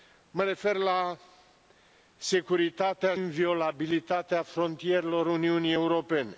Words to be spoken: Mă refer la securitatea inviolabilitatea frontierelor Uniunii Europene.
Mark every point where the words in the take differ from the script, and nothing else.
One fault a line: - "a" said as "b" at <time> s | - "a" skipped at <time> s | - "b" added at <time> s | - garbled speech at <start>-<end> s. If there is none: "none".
none